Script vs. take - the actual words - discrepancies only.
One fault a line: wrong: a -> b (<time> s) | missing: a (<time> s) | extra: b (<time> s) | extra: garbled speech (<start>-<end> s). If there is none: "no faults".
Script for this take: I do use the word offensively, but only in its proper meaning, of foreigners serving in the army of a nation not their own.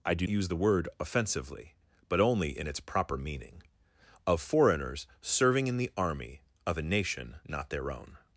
no faults